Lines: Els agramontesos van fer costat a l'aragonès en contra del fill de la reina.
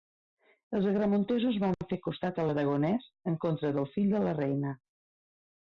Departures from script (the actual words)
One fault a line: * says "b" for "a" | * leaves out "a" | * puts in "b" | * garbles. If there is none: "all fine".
all fine